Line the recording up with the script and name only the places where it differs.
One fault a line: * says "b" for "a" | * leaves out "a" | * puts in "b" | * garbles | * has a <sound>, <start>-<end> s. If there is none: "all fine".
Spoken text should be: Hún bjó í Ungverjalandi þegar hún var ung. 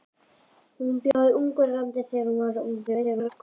* has a dropout, 1.1-1.1 s
* garbles